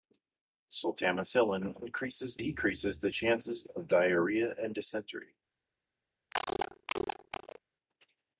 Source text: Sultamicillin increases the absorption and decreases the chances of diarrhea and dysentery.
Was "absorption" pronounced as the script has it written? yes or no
no